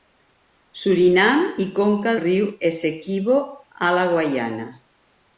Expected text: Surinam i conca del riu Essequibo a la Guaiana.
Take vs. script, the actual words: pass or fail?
fail